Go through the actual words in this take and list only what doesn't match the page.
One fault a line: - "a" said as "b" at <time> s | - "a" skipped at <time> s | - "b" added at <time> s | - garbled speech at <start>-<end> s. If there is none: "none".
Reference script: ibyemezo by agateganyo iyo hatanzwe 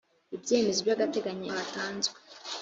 - "iyo" skipped at 1.5 s